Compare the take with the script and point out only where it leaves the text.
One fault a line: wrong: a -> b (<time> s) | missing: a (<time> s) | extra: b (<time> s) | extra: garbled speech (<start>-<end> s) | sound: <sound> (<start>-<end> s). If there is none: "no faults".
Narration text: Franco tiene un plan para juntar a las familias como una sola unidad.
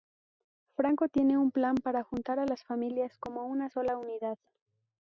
no faults